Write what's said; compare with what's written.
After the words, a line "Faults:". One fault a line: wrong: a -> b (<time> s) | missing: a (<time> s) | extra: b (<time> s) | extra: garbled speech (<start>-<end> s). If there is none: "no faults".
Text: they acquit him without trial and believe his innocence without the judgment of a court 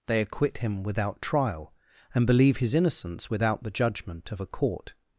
they acquit him without trial and believe his innocence without the judgment of a court
Faults:
no faults